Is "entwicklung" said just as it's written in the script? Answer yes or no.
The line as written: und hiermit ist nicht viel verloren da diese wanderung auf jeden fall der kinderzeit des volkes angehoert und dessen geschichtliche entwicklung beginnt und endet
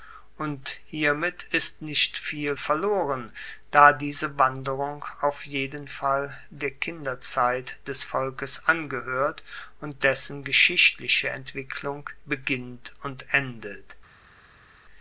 yes